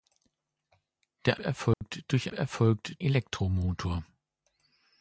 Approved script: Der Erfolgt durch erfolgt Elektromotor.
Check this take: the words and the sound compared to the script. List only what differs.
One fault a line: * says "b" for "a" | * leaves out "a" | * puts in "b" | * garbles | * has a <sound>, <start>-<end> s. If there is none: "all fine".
* has a dropout, 1.7-1.8 s